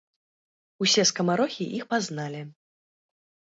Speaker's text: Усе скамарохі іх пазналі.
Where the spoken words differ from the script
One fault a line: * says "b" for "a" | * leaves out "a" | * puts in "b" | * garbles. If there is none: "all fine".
all fine